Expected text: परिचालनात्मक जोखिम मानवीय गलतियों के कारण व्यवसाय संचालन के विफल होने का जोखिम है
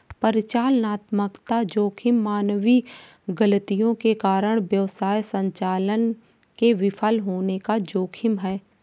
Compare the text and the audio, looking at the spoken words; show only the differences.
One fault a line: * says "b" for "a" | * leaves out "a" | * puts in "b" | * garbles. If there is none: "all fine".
all fine